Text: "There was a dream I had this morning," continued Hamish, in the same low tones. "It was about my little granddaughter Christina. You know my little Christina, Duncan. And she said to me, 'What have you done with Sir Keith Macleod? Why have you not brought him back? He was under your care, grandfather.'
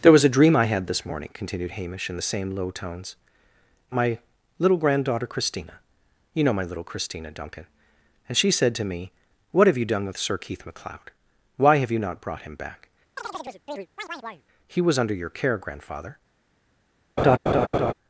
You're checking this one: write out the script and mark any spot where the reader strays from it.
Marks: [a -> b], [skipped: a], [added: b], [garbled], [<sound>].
"There was a dream I had this morning," continued Hamish, in the same low tones. "It [skipped: was about] my little granddaughter Christina. You know my little Christina, Duncan. And she said to me, 'What have you done with Sir Keith Macleod? Why have you not brought him back? [chirp] He was under your care, grandfather.' [laugh]